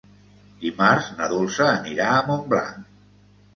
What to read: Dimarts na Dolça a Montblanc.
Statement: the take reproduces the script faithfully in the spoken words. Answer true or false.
false